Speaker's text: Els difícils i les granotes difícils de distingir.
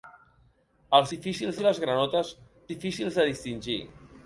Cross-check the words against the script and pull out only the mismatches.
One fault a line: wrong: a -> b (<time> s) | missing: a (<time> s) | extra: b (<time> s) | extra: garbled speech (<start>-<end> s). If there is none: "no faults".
no faults